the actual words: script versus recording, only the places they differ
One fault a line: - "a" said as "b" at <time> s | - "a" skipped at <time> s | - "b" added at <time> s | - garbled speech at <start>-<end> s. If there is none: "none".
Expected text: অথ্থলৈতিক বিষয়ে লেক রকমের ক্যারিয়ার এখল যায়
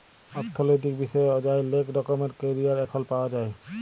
- "অযায়" added at 1.3 s
- "পাউয়া" added at 3.1 s